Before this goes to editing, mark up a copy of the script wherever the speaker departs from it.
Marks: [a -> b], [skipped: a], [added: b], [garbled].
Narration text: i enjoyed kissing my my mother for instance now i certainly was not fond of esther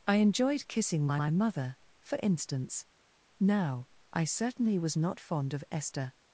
i enjoyed kissing my my mother for instance now i certainly was not fond of esther